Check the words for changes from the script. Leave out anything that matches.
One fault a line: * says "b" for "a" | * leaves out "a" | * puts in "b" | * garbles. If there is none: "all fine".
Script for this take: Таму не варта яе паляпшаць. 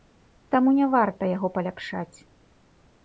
* says "яго" for "яе"